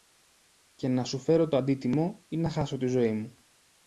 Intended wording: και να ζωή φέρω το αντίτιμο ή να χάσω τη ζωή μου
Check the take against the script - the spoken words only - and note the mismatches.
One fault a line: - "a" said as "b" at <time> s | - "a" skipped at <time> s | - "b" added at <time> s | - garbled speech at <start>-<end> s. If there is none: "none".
- "ζωή" said as "σου" at 1.0 s